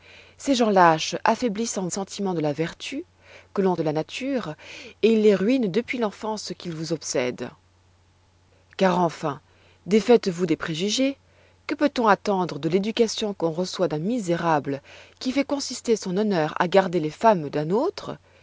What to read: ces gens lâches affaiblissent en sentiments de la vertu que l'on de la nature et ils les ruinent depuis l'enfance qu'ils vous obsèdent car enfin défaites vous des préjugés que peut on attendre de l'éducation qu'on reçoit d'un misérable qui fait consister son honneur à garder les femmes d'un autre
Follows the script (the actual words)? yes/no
yes